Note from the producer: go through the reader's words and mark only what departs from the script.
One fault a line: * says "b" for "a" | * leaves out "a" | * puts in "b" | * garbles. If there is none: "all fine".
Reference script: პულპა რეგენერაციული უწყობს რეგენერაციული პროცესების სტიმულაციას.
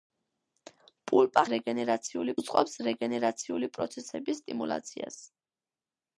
all fine